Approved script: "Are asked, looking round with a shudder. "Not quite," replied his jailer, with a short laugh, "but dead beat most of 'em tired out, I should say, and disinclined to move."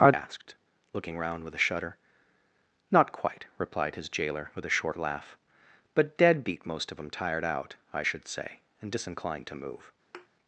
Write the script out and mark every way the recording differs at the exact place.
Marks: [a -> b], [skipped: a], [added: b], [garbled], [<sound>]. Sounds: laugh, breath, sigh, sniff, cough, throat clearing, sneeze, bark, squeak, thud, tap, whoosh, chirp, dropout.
"Are asked, looking round with a shudder. "Not quite," replied his jailer, with a short laugh, "but dead beat most of 'em tired out, I should say, and disinclined to move." [thud]